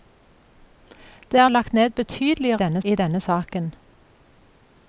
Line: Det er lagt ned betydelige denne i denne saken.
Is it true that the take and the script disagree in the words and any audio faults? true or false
false